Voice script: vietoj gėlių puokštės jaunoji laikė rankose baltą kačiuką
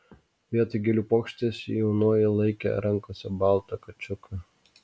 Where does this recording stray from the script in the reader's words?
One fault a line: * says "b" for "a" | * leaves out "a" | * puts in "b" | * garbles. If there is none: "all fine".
all fine